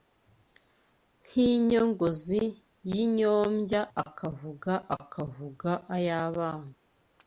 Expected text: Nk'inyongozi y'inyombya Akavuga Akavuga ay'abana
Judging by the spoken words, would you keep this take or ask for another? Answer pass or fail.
pass